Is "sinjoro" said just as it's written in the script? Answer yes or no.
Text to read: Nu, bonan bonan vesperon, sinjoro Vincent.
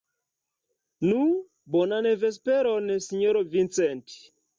yes